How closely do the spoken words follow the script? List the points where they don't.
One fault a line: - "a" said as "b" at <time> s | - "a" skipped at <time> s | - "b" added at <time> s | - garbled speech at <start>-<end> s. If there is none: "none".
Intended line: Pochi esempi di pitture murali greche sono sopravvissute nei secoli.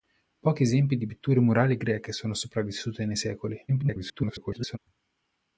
- garbled speech at 3.7-4.8 s